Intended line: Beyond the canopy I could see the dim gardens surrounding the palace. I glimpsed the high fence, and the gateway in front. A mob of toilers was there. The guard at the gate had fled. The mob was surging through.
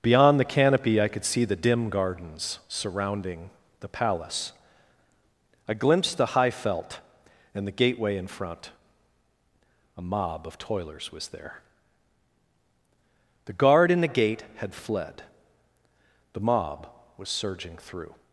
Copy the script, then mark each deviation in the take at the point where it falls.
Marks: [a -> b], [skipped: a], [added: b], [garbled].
Beyond the canopy I could see the dim gardens surrounding the palace. I glimpsed the high [fence, -> felt] and the gateway in front. A mob of toilers was there. The guard [at -> in] the gate had fled. The mob was surging through.